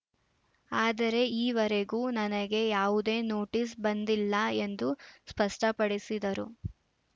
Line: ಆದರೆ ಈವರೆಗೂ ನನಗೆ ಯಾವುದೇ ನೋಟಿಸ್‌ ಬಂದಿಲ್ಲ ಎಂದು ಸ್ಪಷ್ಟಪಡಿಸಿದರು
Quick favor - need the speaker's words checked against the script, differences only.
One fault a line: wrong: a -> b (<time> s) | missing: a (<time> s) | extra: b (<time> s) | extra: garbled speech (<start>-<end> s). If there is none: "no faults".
no faults